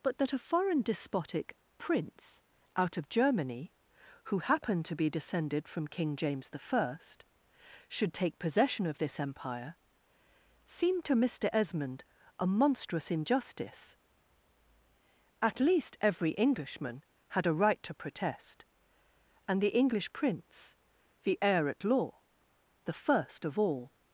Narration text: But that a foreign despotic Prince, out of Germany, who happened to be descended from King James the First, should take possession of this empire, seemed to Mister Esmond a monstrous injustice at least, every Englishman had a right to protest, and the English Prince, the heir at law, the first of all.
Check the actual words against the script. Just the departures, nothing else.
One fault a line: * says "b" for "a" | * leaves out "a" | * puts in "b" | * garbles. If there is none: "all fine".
all fine